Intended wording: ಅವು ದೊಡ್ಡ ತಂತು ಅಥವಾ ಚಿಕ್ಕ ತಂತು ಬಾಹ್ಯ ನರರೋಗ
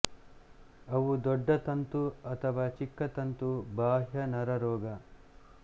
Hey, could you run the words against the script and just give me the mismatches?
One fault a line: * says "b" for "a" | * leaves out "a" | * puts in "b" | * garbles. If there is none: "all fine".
all fine